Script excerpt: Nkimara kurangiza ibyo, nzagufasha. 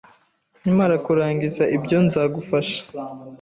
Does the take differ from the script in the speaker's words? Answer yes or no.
no